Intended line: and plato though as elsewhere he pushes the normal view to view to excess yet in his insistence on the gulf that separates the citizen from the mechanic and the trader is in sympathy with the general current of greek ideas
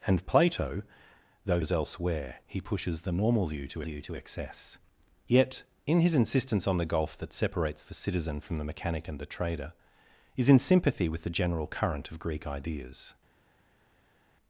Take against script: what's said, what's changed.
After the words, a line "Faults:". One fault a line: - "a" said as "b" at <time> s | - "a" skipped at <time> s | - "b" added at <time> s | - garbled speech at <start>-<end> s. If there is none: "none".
and plato though as elsewhere he pushes the normal view to view to excess yet in his insistence on the gulf that separates the citizen from the mechanic and the trader is in sympathy with the general current of greek ideas
Faults:
none